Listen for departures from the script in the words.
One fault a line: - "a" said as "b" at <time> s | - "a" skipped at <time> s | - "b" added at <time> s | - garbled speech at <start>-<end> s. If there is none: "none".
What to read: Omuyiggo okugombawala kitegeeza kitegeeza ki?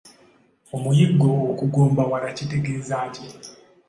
- "kitegeeza" skipped at 3.0 s